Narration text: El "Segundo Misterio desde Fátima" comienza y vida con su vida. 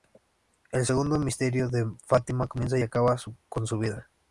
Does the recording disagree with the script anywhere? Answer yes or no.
yes